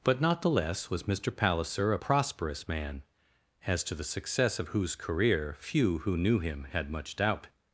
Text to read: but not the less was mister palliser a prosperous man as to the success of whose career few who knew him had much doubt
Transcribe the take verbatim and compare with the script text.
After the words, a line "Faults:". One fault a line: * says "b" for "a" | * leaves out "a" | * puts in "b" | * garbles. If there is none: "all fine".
but not the less was mister palliser a prosperous man as to the success of whose career few who knew him had much doubt
Faults:
all fine